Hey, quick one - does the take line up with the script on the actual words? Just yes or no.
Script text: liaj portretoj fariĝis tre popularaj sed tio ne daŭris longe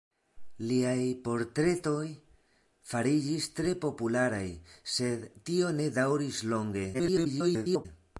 no